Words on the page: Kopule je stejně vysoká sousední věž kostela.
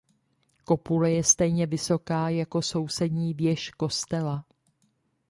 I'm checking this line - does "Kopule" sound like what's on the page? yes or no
yes